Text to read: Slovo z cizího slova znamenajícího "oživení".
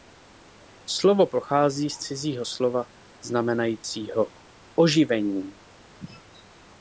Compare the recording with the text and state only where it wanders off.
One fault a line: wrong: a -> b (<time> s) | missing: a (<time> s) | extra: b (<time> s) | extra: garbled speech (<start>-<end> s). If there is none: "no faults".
extra: pochází (1.2 s)